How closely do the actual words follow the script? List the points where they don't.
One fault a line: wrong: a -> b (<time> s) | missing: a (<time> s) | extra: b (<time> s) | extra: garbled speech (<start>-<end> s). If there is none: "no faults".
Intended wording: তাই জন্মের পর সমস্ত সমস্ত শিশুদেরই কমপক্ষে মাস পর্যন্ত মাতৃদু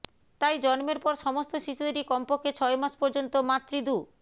missing: সমস্ত (1.5 s)
extra: ছয় (2.6 s)